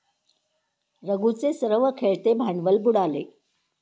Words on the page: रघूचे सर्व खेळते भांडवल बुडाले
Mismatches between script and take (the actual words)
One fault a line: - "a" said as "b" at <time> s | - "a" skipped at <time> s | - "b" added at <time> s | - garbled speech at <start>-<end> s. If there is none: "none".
none